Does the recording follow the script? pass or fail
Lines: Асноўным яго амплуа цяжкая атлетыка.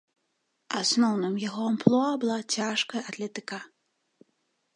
fail